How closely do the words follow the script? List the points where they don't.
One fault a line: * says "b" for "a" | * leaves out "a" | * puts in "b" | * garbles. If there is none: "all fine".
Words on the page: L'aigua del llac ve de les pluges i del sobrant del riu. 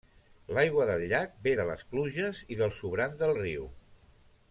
all fine